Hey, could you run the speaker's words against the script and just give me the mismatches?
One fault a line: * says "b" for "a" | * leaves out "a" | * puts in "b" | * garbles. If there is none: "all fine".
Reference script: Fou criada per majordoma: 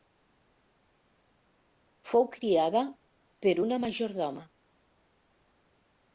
* puts in "una"